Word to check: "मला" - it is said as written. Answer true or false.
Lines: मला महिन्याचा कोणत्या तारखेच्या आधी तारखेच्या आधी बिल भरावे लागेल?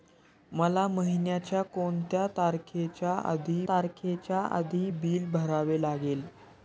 true